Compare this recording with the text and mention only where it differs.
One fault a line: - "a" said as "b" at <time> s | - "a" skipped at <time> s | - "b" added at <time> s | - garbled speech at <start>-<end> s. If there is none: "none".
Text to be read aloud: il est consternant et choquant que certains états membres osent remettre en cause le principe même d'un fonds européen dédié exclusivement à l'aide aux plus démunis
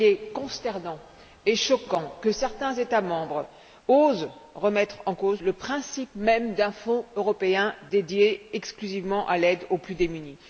none